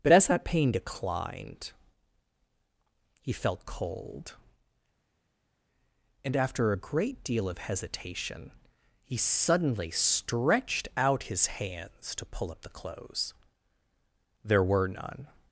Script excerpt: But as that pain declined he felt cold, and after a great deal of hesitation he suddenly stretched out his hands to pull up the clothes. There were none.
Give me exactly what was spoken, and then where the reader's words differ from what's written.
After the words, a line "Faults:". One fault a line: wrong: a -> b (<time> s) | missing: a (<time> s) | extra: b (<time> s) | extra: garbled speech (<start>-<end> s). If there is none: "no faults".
But as that pain declined he felt cold, and after a great deal of hesitation he suddenly stretched out his hands to pull up the clothes. There were none.
Faults:
no faults